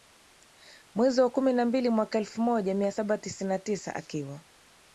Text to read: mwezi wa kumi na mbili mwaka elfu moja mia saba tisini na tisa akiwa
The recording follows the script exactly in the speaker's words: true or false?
true